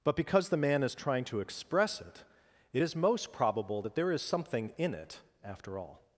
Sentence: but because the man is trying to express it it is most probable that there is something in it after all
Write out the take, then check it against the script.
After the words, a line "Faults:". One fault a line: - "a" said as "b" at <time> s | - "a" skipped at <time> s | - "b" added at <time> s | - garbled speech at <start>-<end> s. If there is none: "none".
but because the man is trying to express it it is most probable that there is something in it after all
Faults:
none